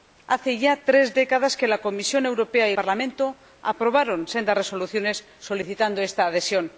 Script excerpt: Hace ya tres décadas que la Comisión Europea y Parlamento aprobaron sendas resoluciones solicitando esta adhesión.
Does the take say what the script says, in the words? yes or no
yes